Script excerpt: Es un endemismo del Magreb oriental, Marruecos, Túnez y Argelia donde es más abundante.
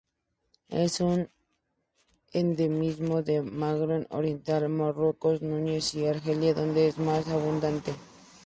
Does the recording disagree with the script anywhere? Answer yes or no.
no